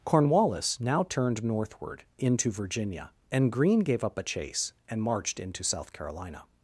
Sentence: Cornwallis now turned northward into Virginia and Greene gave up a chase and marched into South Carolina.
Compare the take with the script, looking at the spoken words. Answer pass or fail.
pass